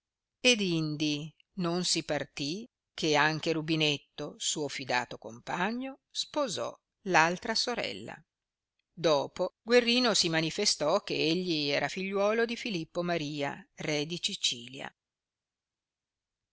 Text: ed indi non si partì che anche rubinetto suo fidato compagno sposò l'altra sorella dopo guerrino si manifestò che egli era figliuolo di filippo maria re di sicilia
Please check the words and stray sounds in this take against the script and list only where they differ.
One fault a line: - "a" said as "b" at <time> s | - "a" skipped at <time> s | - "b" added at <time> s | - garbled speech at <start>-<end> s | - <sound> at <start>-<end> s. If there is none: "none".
none